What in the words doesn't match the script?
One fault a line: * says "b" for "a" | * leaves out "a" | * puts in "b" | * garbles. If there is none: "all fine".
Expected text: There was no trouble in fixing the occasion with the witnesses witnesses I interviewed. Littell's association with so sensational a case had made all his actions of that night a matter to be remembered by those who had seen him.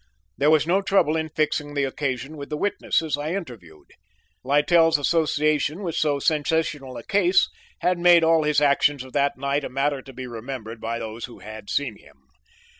* leaves out "witnesses"